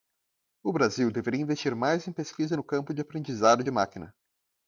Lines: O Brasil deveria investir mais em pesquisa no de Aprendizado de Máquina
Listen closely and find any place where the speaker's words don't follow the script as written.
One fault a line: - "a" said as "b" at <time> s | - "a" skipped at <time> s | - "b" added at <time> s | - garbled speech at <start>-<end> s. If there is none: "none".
- "campo" added at 2.6 s